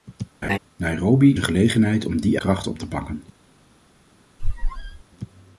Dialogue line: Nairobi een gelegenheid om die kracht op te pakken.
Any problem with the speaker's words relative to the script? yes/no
no